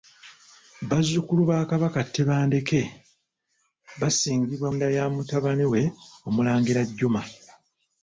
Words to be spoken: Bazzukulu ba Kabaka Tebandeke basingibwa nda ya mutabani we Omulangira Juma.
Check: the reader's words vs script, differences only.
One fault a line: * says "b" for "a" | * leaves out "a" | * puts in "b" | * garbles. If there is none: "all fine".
all fine